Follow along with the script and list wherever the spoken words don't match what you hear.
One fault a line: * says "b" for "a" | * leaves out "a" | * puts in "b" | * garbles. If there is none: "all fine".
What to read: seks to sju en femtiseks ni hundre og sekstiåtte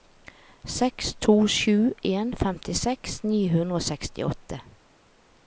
all fine